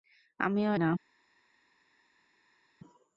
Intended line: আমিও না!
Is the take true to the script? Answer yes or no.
yes